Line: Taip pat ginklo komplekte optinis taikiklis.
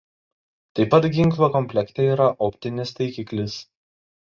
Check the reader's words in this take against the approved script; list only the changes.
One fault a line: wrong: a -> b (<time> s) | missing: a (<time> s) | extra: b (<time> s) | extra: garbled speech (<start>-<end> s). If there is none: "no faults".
extra: yra (2.1 s)